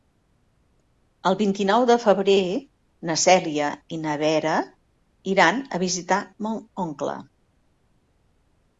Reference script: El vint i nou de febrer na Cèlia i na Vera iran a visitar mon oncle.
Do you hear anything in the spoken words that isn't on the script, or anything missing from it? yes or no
no